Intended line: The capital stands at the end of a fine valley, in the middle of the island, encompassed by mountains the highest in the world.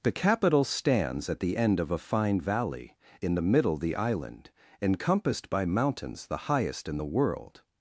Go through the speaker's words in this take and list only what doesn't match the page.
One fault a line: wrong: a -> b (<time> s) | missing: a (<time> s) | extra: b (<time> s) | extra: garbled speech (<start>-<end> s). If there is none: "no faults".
missing: of (3.8 s)